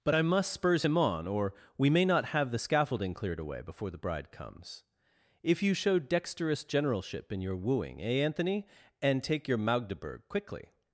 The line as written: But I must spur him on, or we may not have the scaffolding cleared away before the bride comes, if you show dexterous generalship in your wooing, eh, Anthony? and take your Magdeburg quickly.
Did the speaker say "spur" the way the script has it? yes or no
no